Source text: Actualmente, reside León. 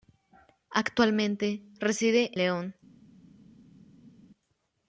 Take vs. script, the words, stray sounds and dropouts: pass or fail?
pass